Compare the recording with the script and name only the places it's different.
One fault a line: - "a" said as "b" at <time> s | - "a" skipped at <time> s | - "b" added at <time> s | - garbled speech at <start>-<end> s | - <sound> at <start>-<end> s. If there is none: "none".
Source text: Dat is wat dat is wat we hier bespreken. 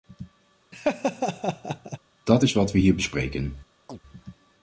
- laugh at 0.7-2.0 s
- "dat is wat" skipped at 2.7 s
- chirp at 3.9-4.0 s